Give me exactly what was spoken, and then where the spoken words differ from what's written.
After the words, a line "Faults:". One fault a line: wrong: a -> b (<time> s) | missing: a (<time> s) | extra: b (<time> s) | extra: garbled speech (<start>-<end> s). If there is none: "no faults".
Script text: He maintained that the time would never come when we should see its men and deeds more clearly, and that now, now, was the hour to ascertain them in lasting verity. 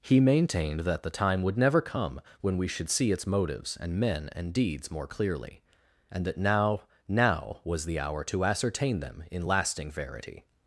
He maintained that the time would never come when we should see its motives and men and deeds more clearly, and that now, now, was the hour to ascertain them in lasting verity.
Faults:
extra: motives and (3.3 s)